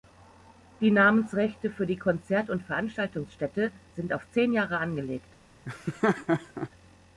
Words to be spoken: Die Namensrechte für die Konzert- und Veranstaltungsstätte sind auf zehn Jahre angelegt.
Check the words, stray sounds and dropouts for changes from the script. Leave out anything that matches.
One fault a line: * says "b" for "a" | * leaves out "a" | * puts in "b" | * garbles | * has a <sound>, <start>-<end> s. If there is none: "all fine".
* has a laugh, 5.6-6.7 s